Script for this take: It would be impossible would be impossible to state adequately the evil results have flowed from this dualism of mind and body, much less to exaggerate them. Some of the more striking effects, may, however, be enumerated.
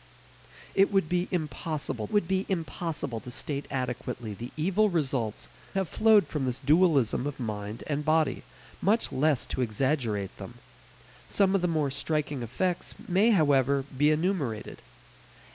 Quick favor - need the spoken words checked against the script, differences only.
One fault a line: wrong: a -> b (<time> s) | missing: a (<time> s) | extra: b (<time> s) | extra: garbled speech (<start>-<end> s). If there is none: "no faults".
no faults